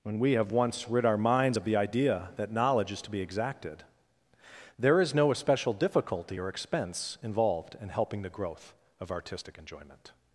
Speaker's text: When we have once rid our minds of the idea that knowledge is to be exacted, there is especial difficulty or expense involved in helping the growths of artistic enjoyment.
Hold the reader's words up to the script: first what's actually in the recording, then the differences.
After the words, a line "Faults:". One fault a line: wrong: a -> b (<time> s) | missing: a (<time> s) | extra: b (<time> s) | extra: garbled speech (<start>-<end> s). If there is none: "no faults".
When we have once rid our minds of the idea that knowledge is to be exacted, there is no especial difficulty or expense involved in helping the growth of artistic enjoyment.
Faults:
extra: no (5.1 s)
wrong: growths -> growth (8.3 s)